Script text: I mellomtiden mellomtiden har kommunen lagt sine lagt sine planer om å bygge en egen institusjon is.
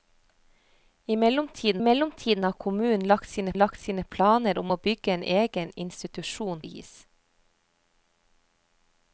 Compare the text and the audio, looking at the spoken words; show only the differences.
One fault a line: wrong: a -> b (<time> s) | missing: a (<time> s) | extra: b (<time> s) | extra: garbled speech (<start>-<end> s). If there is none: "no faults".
no faults